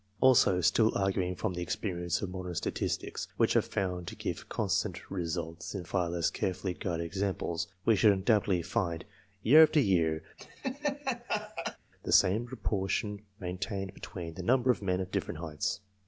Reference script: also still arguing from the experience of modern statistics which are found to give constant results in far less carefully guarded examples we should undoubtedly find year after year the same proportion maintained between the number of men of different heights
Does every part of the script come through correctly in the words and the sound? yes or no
no